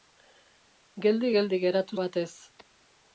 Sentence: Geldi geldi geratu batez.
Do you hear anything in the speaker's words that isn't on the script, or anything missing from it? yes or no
no